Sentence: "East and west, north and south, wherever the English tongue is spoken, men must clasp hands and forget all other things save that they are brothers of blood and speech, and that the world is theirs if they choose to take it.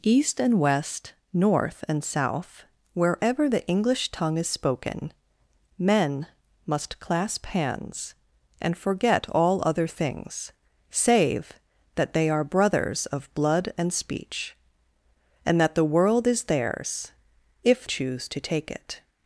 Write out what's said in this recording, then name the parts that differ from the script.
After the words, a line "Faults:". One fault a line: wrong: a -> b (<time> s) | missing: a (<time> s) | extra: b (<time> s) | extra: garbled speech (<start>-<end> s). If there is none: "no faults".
"East and west, north and south, wherever the English tongue is spoken, men must clasp hands and forget all other things save that they are brothers of blood and speech, and that the world is theirs if choose to take it.
Faults:
missing: they (17.9 s)